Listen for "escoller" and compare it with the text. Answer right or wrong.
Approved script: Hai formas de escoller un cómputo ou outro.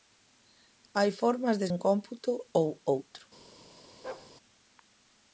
wrong